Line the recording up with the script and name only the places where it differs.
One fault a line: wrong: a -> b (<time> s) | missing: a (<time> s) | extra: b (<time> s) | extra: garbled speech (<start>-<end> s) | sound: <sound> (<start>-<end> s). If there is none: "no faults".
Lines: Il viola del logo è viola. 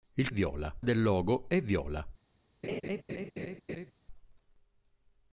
sound: laugh (2.6-3.9 s)